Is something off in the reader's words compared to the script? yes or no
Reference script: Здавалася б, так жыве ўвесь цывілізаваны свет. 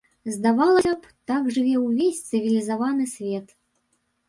no